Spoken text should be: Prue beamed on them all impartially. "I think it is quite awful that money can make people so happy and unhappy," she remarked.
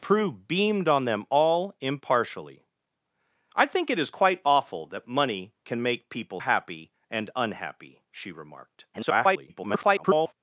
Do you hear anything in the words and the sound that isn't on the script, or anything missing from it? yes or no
yes